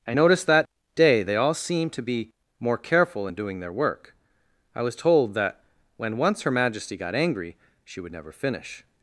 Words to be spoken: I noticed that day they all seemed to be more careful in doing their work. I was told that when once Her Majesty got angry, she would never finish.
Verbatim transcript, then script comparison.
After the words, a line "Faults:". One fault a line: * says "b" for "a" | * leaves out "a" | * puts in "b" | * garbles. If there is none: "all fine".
I noticed that day they all seemed to be more careful in doing their work. I was told that when once Her Majesty got angry, she would never finish.
Faults:
all fine